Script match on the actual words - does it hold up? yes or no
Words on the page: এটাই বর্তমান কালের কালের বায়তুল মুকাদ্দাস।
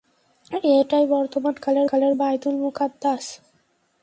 yes